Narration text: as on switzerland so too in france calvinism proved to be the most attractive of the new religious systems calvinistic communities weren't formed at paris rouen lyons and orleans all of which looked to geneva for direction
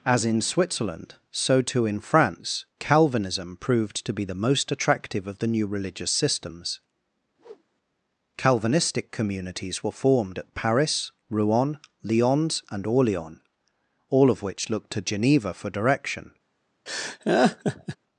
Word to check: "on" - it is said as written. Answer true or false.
false